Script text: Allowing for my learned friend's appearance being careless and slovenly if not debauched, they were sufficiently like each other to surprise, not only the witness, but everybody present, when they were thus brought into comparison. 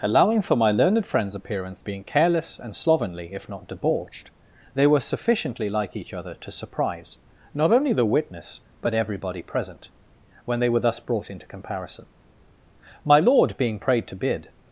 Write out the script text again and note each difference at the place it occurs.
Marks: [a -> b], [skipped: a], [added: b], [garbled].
Allowing for my learned friend's appearance being careless and slovenly if not debauched, they were sufficiently like each other to surprise, not only the witness, but everybody present, when they were thus brought into comparison. [added: My Lord being prayed to bid]